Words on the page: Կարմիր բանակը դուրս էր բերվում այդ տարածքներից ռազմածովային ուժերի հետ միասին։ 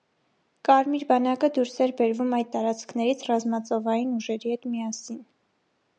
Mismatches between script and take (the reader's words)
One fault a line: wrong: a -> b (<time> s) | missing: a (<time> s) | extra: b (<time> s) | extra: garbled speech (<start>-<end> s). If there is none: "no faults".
no faults